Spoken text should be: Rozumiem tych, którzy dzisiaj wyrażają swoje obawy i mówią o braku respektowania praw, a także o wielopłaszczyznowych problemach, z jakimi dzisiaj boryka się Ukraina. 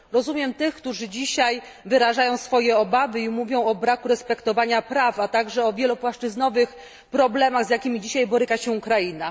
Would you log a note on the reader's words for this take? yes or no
no